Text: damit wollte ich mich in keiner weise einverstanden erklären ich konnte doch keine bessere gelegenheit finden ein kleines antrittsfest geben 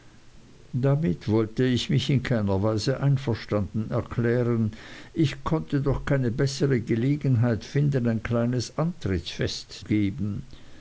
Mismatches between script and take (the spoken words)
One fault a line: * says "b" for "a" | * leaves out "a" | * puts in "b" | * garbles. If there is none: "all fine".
all fine